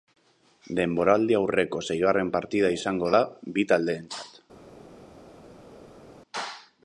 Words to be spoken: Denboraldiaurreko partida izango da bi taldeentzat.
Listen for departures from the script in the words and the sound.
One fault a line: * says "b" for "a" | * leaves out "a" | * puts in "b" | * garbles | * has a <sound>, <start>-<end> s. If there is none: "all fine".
* puts in "seigarren"